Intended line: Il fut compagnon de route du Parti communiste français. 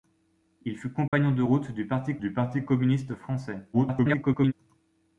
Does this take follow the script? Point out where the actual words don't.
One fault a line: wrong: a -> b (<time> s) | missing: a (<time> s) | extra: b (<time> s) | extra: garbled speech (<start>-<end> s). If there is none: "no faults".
extra: du Parti (2.2 s)
extra: garbled speech (3.7-4.5 s)